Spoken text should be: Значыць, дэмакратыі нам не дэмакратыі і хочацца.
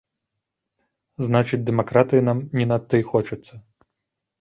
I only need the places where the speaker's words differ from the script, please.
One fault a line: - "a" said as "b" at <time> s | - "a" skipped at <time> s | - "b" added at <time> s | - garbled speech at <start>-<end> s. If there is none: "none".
- "дэмакратыі" said as "надта" at 2.7 s